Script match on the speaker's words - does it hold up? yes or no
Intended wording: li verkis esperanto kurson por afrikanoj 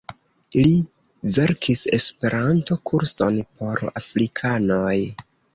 yes